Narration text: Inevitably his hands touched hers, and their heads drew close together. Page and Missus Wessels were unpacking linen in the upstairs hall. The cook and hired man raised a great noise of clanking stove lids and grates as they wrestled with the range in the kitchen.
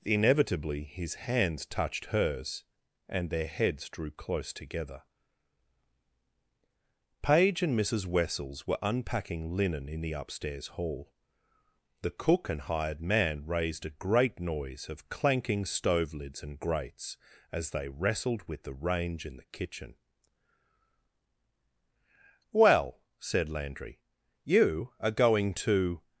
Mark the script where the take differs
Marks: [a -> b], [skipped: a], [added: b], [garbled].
Inevitably his hands touched hers, and their heads drew close together. Page and Missus Wessels were unpacking linen in the upstairs hall. The cook and hired man raised a great noise of clanking stove lids and grates as they wrestled with the range in the kitchen. [added: Well said Landry you are going to]